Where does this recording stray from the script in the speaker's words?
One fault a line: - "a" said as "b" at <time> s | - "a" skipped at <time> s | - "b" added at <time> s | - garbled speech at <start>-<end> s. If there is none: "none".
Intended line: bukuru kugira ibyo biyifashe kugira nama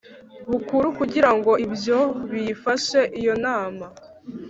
- "ngo" added at 1.4 s
- "kugira" said as "iyo" at 3.2 s